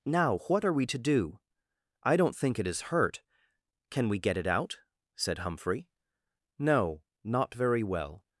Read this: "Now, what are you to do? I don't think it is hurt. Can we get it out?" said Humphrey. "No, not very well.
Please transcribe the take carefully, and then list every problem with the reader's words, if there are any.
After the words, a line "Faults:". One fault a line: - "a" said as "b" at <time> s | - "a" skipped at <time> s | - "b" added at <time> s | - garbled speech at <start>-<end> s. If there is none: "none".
"Now, what are we to do? I don't think it is hurt. Can we get it out?" said Humphrey. "No, not very well.
Faults:
- "you" said as "we" at 0.7 s